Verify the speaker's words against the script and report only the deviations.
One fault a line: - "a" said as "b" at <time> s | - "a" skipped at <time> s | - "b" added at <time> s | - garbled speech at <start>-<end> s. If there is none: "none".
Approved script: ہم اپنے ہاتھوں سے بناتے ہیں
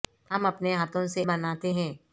none